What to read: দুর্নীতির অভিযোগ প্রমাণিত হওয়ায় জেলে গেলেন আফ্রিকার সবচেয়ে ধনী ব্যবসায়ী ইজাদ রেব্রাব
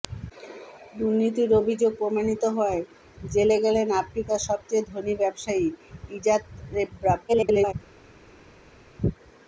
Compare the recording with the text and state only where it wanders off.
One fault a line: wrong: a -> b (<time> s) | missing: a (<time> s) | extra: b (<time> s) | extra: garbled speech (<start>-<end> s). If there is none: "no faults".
extra: garbled speech (7.3-7.7 s)